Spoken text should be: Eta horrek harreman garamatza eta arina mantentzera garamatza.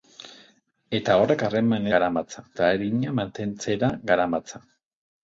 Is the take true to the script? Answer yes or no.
yes